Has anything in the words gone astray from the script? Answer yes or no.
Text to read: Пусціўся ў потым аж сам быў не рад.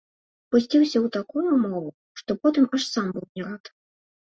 yes